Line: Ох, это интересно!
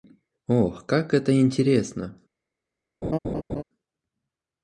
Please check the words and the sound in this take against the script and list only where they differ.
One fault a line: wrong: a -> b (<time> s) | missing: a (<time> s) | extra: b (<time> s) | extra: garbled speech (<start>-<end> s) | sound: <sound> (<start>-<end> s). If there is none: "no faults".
extra: как (0.9 s)
sound: laugh (3.0-3.6 s)